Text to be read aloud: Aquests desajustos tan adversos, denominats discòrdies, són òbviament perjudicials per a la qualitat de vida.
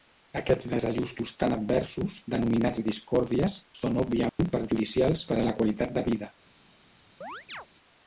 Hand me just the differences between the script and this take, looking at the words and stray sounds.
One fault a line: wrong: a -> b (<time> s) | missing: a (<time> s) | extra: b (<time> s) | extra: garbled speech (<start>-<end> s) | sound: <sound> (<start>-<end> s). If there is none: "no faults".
sound: dropout (4.3-4.4 s)
sound: chirp (7.2-7.7 s)